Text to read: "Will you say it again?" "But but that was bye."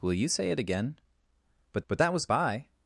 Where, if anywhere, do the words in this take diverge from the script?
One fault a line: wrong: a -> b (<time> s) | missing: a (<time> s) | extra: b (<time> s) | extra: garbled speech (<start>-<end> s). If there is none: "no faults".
no faults